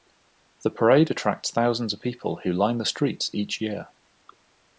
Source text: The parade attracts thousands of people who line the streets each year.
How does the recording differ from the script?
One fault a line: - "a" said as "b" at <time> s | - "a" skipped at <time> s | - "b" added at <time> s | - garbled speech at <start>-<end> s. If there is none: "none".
none